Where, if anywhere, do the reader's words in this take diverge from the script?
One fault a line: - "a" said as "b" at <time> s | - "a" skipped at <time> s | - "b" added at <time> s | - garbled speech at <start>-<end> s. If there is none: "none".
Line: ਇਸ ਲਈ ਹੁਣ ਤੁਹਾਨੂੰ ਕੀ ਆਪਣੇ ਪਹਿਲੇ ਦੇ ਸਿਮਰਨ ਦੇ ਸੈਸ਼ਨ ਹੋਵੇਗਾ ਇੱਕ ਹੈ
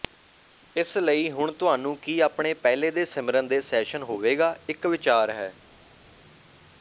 - "ਵਿਚਾਰ" added at 4.9 s